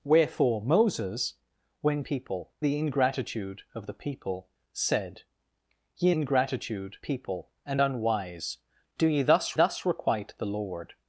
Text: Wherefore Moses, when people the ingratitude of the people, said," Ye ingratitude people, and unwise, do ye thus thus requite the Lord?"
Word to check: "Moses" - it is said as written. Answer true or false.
true